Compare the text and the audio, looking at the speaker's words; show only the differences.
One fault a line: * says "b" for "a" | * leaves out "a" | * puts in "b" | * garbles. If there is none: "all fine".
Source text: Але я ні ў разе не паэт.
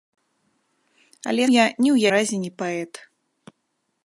all fine